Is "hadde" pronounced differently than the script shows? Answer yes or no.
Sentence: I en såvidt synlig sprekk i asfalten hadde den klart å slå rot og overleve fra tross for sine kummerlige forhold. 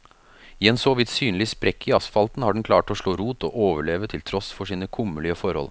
yes